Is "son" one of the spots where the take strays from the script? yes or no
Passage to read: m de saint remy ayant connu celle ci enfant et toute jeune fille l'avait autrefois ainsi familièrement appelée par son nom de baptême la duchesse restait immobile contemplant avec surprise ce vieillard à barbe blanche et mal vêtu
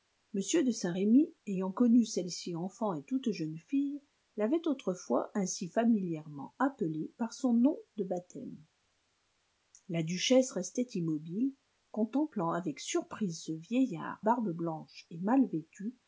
no